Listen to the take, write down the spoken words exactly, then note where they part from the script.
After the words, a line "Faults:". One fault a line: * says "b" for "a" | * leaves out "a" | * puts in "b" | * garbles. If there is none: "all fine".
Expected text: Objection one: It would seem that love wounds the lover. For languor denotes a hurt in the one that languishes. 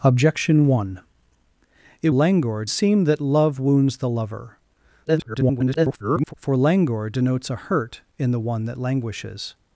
Objection one: It languor seem that love wounds the lover. [garbled] For languor denotes a hurt in the one that languishes.
Faults:
* says "languor" for "would"
* garbles